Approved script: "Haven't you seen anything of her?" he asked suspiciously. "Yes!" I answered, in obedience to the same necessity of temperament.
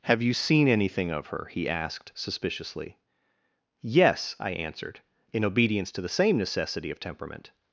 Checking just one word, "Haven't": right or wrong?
wrong